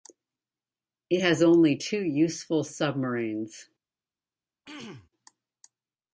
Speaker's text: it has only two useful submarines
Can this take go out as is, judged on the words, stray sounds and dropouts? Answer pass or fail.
fail